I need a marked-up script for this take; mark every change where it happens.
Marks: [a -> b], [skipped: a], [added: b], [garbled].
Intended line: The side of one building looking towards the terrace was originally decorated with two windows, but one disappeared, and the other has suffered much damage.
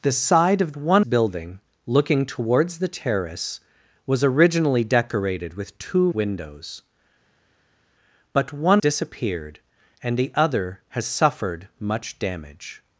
The side of one building looking towards the terrace was originally decorated with two windows, but one disappeared, and the other has suffered much damage.